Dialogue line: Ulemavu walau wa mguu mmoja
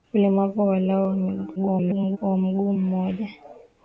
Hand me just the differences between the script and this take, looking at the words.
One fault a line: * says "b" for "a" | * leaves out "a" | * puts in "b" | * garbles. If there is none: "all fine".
* garbles